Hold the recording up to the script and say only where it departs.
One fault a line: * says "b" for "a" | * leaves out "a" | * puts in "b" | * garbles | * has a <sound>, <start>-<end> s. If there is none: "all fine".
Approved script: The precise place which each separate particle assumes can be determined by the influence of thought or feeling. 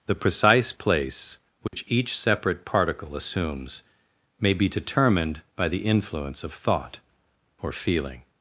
* has a dropout, 1.7-1.7 s
* says "may" for "can"